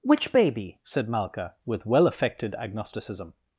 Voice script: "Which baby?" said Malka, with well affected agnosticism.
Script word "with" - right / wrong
right